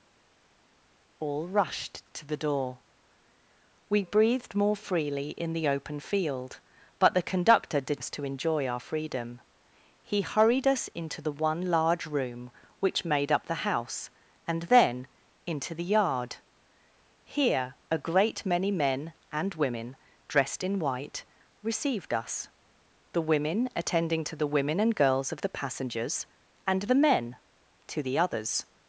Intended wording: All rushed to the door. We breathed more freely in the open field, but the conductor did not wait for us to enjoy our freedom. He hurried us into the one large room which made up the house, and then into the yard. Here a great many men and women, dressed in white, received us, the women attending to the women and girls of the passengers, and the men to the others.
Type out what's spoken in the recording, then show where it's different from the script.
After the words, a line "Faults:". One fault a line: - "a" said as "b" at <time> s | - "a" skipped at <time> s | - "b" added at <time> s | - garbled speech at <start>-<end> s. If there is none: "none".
All rushed to the door. We breathed more freely in the open field, but the conductor did us to enjoy our freedom. He hurried us into the one large room which made up the house, and then into the yard. Here a great many men and women, dressed in white, received us, the women attending to the women and girls of the passengers, and the men to the others.
Faults:
- "not wait for" skipped at 8.0 s